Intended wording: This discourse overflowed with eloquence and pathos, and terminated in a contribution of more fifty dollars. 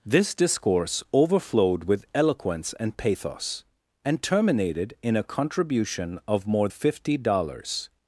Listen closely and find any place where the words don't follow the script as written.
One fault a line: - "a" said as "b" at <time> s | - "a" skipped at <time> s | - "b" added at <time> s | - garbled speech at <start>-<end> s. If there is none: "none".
none